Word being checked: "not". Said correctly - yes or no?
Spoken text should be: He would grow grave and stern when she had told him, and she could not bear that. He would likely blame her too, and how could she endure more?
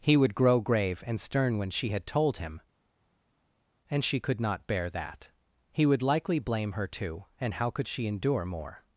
yes